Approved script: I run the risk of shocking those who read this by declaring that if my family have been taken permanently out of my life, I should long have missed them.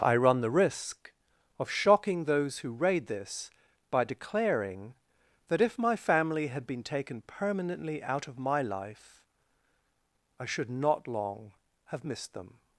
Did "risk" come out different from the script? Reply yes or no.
no